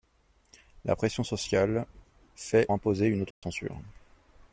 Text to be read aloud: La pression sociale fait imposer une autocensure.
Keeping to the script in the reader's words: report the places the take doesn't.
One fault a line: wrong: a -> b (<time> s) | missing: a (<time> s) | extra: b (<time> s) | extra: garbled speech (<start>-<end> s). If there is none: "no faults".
no faults